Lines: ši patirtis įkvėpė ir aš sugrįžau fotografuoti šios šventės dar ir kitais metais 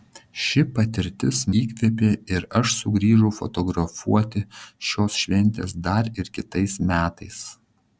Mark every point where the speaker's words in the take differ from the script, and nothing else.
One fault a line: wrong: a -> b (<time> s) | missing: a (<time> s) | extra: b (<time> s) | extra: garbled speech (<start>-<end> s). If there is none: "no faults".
no faults